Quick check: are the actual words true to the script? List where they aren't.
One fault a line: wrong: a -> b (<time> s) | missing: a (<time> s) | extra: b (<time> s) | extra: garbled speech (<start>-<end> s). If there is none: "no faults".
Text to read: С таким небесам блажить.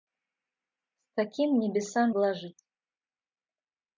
no faults